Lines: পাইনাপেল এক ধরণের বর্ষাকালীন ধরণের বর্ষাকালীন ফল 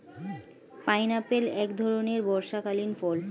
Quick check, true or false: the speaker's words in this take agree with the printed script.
false